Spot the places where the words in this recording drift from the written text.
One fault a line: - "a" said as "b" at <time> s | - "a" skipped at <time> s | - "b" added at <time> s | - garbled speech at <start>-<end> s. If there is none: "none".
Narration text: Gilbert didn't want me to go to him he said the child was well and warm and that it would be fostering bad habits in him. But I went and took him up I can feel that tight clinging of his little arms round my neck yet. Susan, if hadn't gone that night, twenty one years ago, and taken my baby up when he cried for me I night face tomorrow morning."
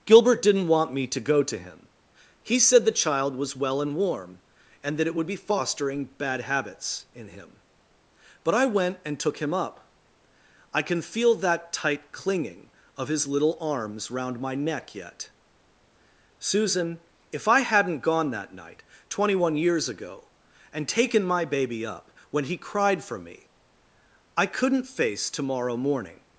- "I" added at 17.5 s
- "night" said as "couldn't" at 24.5 s